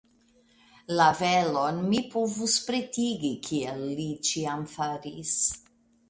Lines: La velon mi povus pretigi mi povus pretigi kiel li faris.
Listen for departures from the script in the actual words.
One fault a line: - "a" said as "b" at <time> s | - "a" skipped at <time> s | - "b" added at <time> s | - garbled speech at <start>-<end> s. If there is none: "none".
- "mi povus pretigi" skipped at 3.3 s
- "ĉiam" added at 4.3 s